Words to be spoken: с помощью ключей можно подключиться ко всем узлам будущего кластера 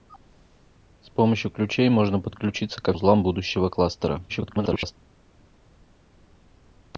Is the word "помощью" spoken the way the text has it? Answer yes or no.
yes